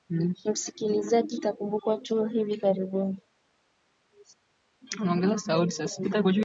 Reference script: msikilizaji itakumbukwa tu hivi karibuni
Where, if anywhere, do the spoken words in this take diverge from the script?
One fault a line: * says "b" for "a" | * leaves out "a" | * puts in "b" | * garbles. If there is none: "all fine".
all fine